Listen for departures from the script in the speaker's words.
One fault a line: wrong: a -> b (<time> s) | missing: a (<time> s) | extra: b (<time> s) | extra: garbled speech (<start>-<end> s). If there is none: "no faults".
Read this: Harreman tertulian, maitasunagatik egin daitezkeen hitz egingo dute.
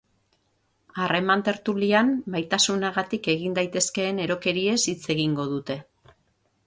extra: erokeriez (4.3 s)